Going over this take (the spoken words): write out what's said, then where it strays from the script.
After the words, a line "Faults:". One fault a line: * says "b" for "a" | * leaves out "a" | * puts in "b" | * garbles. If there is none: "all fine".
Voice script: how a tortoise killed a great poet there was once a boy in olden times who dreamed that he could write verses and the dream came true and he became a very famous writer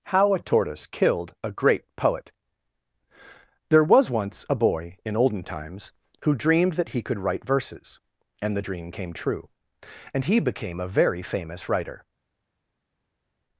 how a tortoise killed a great poet there was once a boy in olden times who dreamed that he could write verses and the dream came true and he became a very famous writer
Faults:
all fine